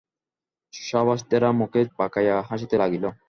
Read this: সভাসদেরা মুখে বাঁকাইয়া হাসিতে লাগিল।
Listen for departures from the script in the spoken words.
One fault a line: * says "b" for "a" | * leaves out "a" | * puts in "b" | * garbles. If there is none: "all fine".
all fine